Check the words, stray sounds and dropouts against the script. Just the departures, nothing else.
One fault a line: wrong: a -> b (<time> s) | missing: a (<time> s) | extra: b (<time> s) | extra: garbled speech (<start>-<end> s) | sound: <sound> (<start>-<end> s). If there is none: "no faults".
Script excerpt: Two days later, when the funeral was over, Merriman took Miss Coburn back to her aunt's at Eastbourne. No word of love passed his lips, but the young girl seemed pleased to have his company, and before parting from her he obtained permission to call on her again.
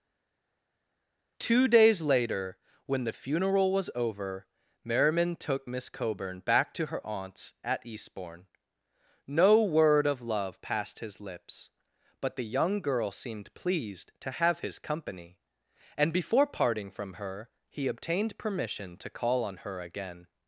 no faults